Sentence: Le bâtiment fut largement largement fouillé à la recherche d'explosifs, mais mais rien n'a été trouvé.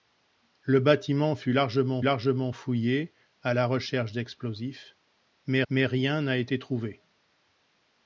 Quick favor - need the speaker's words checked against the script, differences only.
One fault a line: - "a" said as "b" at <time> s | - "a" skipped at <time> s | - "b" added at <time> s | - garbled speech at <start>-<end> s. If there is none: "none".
none